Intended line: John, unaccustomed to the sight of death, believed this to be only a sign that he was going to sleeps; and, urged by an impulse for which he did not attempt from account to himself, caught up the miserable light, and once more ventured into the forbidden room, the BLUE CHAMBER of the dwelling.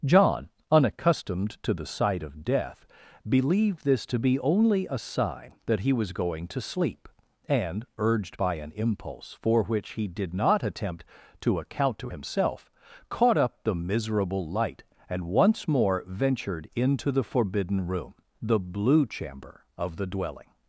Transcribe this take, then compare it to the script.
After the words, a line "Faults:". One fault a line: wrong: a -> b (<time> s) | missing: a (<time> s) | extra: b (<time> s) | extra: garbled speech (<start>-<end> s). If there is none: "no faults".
John, unaccustomed to the sight of death, believed this to be only a sign that he was going to sleep; and, urged by an impulse for which he did not attempt to account to himself, caught up the miserable light, and once more ventured into the forbidden room, the BLUE CHAMBER of the dwelling.
Faults:
wrong: sleeps -> sleep (6.6 s)
wrong: from -> to (11.4 s)